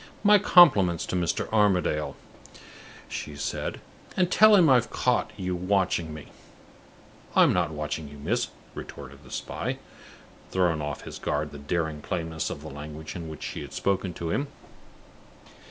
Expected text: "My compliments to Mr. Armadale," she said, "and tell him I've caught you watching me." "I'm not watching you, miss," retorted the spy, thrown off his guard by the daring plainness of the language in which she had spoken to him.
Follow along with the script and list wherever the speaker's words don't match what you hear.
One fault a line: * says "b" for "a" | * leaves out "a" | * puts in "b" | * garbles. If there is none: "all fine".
* leaves out "by"